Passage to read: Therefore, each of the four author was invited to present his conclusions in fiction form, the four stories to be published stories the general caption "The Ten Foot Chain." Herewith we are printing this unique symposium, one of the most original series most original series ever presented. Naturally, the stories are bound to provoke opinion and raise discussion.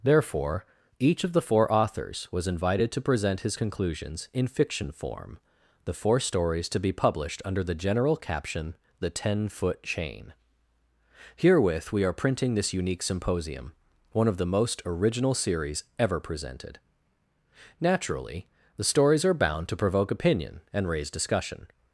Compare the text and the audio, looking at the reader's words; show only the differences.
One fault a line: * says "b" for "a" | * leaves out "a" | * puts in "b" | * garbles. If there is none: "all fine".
* says "authors" for "author"
* says "under" for "stories"
* leaves out "most original series"